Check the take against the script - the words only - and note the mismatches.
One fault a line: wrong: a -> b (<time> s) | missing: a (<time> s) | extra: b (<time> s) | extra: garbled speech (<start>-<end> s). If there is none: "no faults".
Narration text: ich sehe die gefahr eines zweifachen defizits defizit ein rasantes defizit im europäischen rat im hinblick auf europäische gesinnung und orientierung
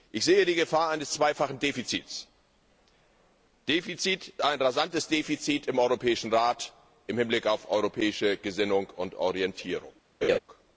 no faults